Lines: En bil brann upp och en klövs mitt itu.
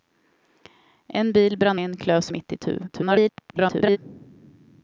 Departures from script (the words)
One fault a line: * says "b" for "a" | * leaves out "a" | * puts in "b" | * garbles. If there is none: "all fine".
* leaves out "upp och"
* garbles